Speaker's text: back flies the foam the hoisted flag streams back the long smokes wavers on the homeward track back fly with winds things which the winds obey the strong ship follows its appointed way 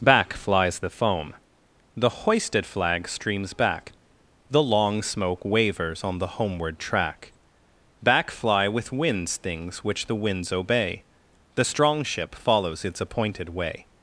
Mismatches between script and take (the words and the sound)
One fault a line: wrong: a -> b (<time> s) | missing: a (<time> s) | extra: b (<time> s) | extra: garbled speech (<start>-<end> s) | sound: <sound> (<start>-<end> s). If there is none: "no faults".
wrong: smokes -> smoke (5.0 s)